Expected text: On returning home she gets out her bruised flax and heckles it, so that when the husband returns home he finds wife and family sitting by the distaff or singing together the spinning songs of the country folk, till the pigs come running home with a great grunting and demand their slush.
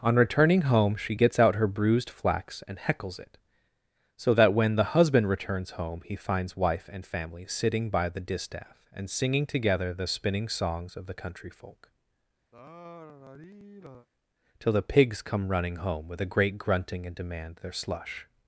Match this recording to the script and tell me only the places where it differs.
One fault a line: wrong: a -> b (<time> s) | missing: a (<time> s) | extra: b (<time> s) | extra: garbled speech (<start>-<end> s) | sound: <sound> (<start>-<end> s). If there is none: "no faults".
wrong: or -> and (8.9 s)
sound: sigh (12.5-14.1 s)